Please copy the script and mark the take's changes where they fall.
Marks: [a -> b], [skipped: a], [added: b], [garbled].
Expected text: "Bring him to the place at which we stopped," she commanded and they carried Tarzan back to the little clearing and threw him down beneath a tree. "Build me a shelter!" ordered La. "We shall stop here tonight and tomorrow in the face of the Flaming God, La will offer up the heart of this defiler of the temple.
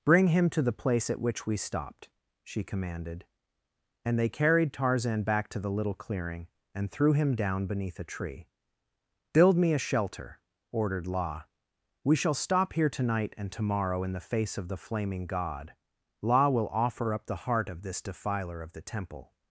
"Bring him to the place at which we stopped," she commanded and they carried Tarzan back to the little clearing and threw him down beneath a tree. "Build me a shelter!" ordered La. "We shall stop here tonight and tomorrow in the face of the Flaming God, La will offer up the heart of this defiler of the temple.